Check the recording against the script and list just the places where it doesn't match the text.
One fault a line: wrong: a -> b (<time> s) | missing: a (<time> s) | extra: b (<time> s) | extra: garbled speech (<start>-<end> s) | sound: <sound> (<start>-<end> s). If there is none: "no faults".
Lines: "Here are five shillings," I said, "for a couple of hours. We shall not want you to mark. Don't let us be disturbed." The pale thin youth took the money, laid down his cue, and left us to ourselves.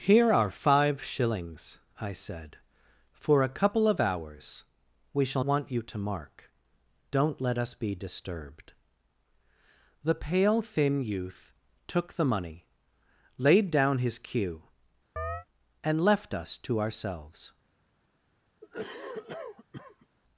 missing: not (5.4 s)
sound: chirp (15.2-15.5 s)
sound: cough (18.6-20.1 s)